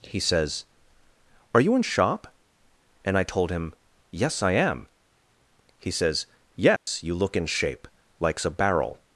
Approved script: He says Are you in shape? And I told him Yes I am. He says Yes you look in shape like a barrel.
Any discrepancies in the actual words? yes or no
yes